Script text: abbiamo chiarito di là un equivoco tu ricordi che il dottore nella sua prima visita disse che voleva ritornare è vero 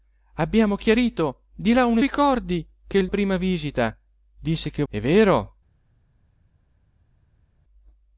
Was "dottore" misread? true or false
true